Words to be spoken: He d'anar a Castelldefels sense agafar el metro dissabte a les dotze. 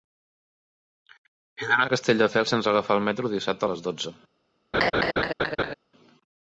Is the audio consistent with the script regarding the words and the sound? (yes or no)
no